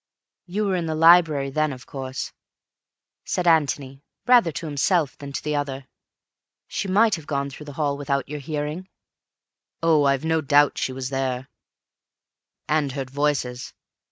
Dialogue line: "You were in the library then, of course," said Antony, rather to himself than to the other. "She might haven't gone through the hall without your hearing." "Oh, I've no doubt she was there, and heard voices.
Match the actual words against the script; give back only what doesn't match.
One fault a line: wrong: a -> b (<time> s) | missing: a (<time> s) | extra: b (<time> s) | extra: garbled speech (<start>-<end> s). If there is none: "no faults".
wrong: haven't -> have (7.1 s)